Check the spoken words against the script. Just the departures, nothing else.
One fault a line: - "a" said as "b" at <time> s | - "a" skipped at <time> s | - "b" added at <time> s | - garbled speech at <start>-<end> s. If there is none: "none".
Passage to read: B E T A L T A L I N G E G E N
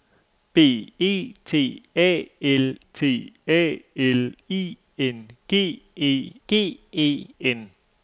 none